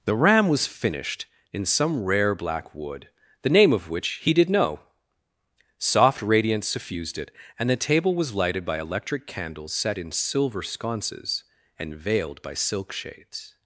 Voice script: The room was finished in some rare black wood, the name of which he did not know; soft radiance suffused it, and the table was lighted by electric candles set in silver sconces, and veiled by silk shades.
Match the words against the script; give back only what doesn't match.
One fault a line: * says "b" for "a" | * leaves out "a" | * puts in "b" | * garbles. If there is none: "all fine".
* says "ram" for "room"
* leaves out "not"